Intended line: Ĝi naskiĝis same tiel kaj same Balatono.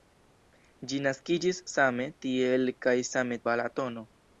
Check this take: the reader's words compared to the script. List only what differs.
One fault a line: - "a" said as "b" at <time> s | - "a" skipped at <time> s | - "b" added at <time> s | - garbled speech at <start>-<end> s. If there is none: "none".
none